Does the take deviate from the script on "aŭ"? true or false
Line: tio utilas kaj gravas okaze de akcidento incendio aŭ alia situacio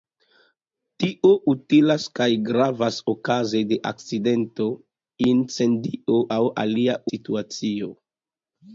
false